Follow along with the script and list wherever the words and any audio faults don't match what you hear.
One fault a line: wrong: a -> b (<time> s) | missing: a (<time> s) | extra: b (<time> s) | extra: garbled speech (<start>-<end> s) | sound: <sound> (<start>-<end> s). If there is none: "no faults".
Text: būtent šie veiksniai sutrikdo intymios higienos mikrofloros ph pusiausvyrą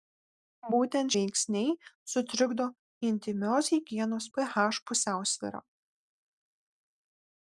missing: šie (1.1 s)
missing: mikrofloros (4.3 s)